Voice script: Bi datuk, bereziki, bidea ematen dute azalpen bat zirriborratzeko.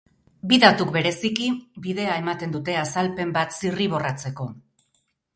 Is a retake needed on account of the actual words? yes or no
no